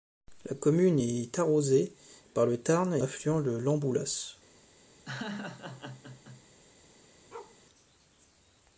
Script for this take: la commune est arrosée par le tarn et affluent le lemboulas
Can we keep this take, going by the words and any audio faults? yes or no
no